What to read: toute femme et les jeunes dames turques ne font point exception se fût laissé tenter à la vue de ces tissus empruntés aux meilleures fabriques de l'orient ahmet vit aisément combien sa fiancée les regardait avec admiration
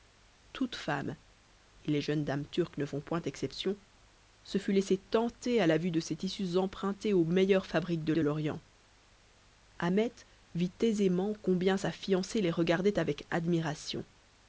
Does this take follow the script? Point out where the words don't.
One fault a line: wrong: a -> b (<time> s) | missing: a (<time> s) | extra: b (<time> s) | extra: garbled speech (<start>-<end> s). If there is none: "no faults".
extra: de (8.1 s)